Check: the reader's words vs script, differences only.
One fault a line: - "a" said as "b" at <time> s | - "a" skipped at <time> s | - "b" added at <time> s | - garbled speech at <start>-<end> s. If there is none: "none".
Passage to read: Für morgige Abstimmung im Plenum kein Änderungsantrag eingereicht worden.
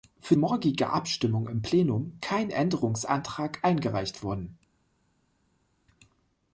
none